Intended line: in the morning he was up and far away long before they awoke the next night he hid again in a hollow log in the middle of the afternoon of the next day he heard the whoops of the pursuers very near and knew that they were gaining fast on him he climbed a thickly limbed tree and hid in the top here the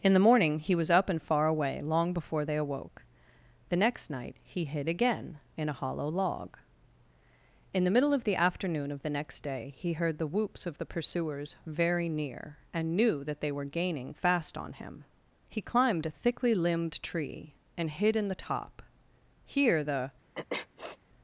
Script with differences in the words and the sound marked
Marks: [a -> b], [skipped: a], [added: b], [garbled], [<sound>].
in the morning he was up and far away long before they awoke the next night he hid again in a hollow log in the middle of the afternoon of the next day he heard the whoops of the pursuers very near and knew that they were gaining fast on him he climbed a thickly limbed tree and hid in the top here the [sniff]